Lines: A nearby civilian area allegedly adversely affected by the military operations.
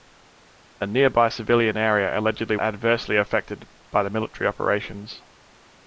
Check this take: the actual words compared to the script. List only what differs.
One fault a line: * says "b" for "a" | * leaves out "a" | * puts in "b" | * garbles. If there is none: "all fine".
all fine